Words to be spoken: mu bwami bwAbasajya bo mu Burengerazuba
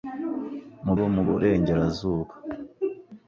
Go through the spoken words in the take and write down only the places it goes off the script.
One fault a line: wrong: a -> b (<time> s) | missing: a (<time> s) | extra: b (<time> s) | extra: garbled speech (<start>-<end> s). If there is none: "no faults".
missing: bwami bwAbasajya (0.9 s)